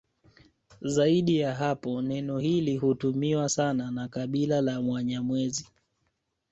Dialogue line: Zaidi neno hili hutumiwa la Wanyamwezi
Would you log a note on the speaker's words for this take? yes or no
yes